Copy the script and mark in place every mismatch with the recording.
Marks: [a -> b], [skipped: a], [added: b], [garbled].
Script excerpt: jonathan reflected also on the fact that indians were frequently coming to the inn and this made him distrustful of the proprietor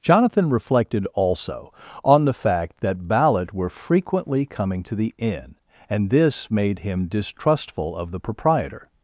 jonathan reflected also on the fact that [indians -> ballot] were frequently coming to the inn and this made him distrustful of the proprietor